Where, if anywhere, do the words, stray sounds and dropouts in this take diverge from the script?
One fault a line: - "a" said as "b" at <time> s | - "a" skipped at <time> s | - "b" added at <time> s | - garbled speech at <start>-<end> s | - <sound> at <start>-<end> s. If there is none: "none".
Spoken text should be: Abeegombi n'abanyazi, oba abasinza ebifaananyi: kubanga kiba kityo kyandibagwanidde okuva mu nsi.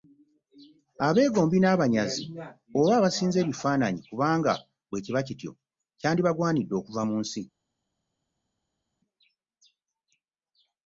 - "bwe" added at 4.9 s